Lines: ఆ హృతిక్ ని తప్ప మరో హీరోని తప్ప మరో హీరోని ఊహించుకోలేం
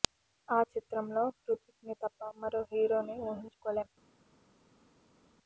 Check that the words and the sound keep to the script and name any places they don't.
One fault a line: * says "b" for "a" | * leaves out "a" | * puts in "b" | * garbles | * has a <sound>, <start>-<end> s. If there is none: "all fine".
* puts in "చిత్రంలో"
* leaves out "తప్ప మరో హీరోని"